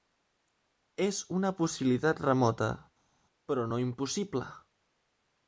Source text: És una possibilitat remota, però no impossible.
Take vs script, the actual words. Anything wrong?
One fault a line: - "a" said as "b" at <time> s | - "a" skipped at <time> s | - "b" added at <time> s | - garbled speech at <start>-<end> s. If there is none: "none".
none